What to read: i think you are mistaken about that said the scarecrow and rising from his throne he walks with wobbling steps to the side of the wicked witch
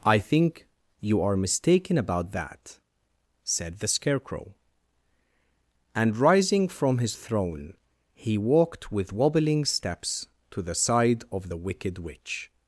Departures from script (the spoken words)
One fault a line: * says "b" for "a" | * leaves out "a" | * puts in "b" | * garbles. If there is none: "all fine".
* says "walked" for "walks"